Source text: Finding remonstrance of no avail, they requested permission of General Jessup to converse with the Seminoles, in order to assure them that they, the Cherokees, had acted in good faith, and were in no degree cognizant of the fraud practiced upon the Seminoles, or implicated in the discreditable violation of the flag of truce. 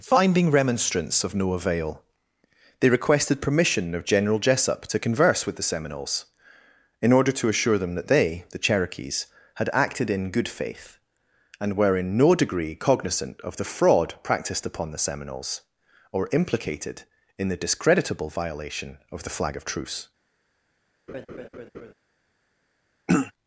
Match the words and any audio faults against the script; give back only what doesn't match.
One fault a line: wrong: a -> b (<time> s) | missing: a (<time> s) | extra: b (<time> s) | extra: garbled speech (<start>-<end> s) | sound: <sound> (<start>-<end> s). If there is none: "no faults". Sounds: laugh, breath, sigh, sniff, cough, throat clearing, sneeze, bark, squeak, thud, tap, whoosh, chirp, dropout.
sound: laugh (21.1-21.9 s)
sound: throat clearing (23.1-23.3 s)